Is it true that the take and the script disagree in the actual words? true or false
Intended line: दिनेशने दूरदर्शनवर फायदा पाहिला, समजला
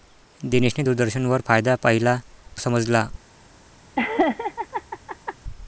false